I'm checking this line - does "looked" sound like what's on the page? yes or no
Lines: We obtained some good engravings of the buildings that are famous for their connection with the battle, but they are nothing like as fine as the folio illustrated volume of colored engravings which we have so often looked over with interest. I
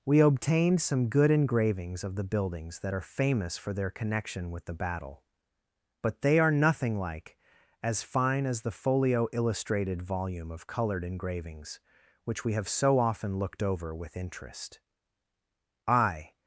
yes